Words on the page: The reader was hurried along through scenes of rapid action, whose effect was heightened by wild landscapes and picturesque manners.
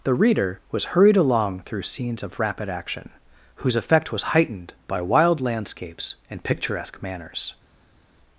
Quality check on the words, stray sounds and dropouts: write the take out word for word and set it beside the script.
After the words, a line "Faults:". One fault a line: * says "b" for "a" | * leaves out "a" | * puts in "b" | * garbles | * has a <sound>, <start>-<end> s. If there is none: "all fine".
The reader was hurried along through scenes of rapid action, whose effect was heightened by wild landscapes and picturesque manners.
Faults:
all fine